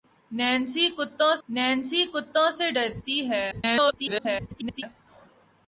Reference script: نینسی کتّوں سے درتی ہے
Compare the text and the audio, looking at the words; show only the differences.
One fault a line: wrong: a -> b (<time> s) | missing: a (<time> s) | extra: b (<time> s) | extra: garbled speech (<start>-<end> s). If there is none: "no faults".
extra: نینسی کتّوں (1.5 s)
extra: garbled speech (3.5-4.8 s)